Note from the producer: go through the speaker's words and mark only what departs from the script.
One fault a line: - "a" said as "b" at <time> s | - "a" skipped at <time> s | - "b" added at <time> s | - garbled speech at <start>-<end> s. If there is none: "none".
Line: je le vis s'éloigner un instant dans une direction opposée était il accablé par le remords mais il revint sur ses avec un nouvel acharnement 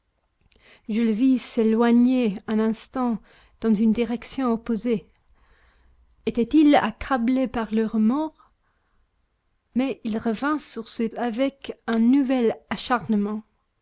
none